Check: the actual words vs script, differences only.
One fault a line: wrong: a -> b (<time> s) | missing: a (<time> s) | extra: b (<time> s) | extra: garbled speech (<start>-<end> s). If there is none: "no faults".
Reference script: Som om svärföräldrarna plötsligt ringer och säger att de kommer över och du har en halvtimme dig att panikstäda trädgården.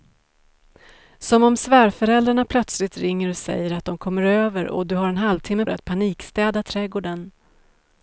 no faults